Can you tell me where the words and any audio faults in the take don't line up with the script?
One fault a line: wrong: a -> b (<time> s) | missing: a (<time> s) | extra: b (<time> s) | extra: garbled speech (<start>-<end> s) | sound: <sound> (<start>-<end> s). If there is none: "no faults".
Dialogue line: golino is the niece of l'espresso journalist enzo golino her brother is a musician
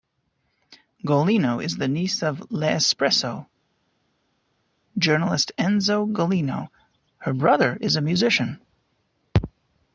no faults